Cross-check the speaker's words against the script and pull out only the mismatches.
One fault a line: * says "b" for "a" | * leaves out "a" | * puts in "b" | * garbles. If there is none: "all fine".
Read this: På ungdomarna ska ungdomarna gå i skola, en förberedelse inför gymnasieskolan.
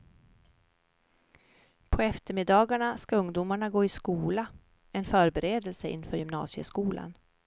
* says "eftermiddagarna" for "ungdomarna"